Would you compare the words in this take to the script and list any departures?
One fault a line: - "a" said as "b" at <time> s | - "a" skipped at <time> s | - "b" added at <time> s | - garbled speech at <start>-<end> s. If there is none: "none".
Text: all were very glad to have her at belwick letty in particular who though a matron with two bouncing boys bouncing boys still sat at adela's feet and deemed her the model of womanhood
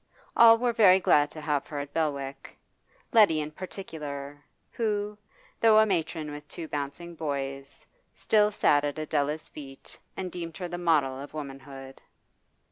- "bouncing boys" skipped at 7.8 s